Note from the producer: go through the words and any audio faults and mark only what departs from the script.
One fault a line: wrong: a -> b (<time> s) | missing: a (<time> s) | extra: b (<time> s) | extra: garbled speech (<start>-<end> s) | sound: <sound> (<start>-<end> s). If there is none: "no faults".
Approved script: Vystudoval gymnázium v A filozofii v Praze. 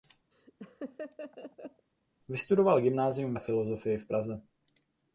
sound: laugh (0.3-1.9 s)